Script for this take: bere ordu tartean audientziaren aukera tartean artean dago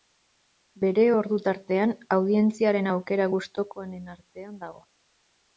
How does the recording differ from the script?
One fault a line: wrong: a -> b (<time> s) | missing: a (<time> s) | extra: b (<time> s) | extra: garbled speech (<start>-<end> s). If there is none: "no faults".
wrong: tartean -> gustukoenen (3.3 s)